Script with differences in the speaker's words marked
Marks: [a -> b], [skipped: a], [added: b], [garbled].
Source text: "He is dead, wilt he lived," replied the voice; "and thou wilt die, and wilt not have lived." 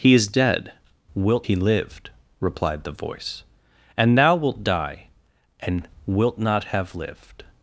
"He is dead, wilt he lived," replied the voice; "and thou wilt die, and wilt not have lived."